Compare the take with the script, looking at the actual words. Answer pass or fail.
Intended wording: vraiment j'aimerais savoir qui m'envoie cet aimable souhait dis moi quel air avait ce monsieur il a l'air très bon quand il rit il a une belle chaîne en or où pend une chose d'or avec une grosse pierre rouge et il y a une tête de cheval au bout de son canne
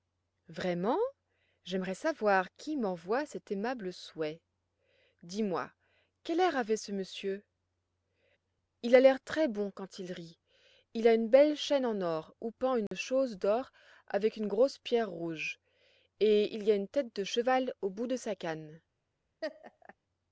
fail